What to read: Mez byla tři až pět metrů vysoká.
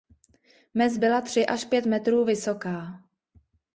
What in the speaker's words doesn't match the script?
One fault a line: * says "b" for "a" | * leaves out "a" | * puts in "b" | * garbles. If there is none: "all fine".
all fine